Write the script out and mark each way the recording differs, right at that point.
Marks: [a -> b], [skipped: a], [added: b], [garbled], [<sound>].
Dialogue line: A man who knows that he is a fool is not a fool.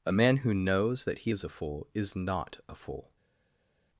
A man who knows that he is a fool is not a fool.